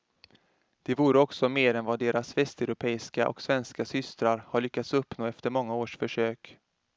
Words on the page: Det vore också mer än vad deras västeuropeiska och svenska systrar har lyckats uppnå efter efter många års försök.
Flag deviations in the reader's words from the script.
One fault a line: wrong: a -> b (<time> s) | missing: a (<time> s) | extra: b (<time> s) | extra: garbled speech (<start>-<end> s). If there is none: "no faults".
missing: efter (5.5 s)